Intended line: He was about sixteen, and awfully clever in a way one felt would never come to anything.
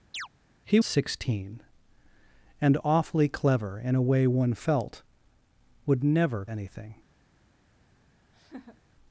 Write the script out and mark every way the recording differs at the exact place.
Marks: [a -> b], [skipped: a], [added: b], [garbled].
He [skipped: was about] sixteen, and awfully clever in a way one felt would never [skipped: come to] anything.